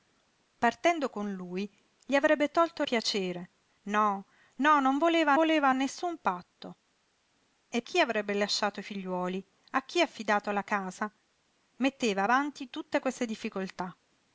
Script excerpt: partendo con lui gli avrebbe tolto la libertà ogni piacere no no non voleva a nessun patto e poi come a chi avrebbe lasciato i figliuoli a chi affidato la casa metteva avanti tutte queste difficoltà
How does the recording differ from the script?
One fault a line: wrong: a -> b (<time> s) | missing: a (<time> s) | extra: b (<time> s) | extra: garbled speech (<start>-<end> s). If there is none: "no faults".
missing: la libertà ogni (2.8 s)
extra: voleva (5.3 s)
missing: poi come a (7.8 s)